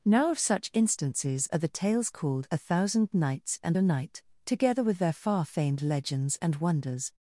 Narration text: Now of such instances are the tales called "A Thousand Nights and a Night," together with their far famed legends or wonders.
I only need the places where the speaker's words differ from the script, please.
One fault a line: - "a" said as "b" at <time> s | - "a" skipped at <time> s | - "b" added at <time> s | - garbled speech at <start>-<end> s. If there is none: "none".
- "or" said as "and" at 6.4 s